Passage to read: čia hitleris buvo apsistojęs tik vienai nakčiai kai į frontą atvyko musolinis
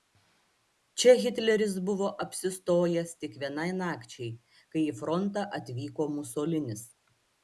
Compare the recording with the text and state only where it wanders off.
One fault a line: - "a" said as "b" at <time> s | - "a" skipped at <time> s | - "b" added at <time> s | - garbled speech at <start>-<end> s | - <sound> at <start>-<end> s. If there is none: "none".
none